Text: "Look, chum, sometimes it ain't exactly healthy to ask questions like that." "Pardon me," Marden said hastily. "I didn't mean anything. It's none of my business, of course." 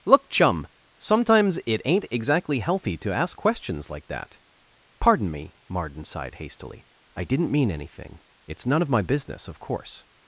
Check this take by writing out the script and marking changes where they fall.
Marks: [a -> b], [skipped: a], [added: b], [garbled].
"Look, chum, sometimes it ain't exactly healthy to ask questions like that." "Pardon me," Marden [said -> sighed] hastily. "I didn't mean anything. It's none of my business, of course."